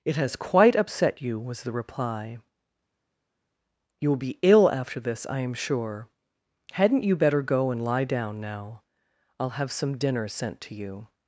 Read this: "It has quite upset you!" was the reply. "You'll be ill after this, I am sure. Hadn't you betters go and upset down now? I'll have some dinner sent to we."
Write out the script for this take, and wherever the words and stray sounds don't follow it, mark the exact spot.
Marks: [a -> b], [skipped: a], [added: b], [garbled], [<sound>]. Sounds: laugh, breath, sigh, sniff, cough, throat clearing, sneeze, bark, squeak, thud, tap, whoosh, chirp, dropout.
"It has quite upset you!" was the reply. "You'll be ill after this, I am sure. Hadn't you [betters -> better] go and [upset -> lie] down now? I'll have some dinner sent to [we." -> you]